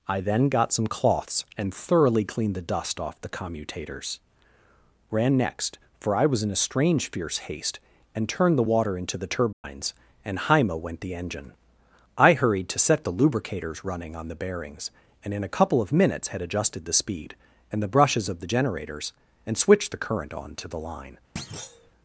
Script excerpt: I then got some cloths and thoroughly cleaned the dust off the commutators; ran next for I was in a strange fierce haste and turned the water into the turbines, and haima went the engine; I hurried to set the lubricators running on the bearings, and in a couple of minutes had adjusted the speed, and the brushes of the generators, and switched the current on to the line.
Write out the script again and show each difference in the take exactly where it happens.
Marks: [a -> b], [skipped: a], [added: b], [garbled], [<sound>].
I then got some cloths and thoroughly cleaned the dust off the commutators; ran next for I was in a strange fierce haste and turned the water into the turbines, [dropout] and haima went the engine; I hurried to set the lubricators running on the bearings, and in a couple of minutes had adjusted the speed, and the brushes of the generators, and switched the current on to the line. [thud]